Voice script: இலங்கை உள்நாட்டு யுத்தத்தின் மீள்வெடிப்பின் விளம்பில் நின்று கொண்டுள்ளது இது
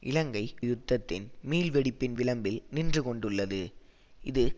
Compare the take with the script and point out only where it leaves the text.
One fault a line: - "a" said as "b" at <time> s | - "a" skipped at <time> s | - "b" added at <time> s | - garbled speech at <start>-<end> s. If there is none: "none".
- "உள்நாட்டு" skipped at 0.4 s